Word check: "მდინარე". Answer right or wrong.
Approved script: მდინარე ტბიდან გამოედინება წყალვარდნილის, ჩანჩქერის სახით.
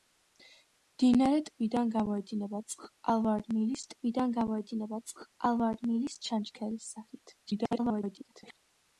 right